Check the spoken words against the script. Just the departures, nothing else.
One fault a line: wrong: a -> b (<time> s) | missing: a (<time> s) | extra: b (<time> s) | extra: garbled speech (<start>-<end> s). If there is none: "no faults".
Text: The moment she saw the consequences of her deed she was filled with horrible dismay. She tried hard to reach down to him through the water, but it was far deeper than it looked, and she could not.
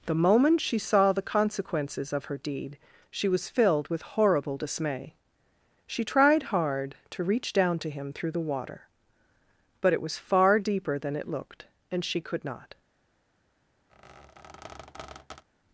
no faults